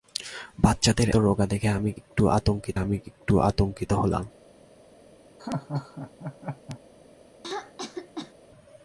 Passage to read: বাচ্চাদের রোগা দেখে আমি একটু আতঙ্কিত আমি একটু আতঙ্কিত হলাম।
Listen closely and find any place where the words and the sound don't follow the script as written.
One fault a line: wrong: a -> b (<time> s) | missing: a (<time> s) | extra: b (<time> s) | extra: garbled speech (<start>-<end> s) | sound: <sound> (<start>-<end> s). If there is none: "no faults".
sound: laugh (5.4-6.8 s)
sound: throat clearing (7.4-8.3 s)